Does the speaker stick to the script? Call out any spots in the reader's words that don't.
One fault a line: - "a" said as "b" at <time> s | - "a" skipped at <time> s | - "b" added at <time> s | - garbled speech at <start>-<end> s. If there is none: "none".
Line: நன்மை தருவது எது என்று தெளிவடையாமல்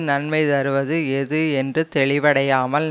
none